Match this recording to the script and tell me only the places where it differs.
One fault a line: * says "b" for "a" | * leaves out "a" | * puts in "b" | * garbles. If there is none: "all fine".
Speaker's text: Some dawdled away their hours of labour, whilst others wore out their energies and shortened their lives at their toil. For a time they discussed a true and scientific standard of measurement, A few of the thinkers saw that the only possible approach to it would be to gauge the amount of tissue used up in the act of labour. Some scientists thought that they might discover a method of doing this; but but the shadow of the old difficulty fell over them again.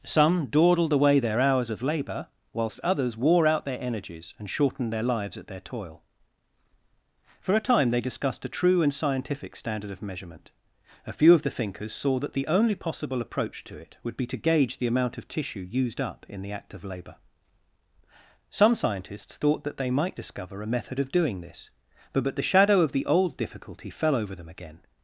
all fine